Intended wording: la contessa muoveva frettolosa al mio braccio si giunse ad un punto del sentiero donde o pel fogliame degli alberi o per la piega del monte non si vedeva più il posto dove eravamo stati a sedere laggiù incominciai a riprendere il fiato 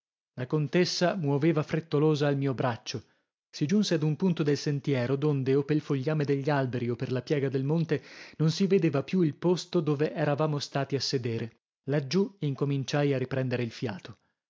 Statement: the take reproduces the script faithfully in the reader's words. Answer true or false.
true